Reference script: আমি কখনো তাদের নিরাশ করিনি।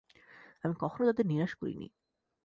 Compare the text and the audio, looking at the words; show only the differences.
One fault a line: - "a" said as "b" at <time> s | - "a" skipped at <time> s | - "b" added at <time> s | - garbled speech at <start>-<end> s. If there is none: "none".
none